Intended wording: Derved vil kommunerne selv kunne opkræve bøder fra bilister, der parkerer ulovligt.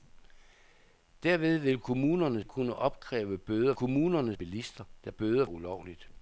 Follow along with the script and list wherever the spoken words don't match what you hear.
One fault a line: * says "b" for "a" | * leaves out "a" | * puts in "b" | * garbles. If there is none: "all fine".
* leaves out "selv"
* says "kommunerne" for "fra"
* says "bøder" for "parkerer"